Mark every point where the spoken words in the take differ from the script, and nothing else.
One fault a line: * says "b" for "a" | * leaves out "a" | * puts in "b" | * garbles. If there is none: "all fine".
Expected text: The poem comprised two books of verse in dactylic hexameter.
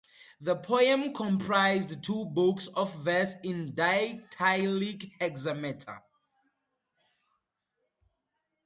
all fine